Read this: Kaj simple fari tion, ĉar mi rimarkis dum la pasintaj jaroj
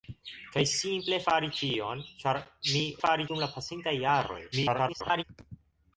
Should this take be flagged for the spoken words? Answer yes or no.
yes